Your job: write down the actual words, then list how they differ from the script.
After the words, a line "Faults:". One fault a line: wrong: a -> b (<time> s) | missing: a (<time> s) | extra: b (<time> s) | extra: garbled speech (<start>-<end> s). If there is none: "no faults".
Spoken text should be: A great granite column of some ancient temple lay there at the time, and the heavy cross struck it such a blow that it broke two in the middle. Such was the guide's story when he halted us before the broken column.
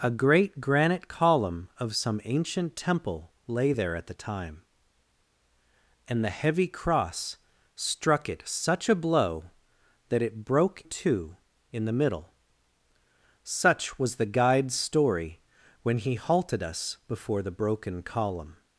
A great granite column of some ancient temple lay there at the time, and the heavy cross struck it such a blow that it broke two in the middle. Such was the guide's story when he halted us before the broken column.
Faults:
no faults